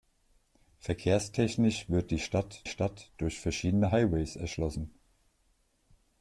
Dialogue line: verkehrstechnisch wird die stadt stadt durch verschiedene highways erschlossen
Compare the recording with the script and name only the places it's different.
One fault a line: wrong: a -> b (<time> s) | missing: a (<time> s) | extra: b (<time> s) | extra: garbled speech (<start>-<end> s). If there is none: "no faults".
no faults